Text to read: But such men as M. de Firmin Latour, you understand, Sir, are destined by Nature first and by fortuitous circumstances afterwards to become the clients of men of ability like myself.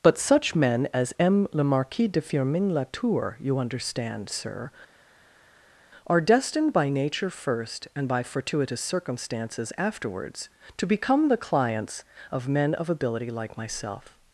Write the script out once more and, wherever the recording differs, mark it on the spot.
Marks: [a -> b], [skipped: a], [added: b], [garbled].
But such men as M. [added: le Marquis] de Firmin Latour, you understand, Sir, are destined by Nature first and by fortuitous circumstances afterwards to become the clients of men of ability like myself.